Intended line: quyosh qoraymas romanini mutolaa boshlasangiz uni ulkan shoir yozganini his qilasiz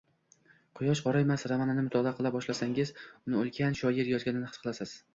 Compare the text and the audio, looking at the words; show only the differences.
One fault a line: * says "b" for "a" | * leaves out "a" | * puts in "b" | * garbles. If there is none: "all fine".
* puts in "qila"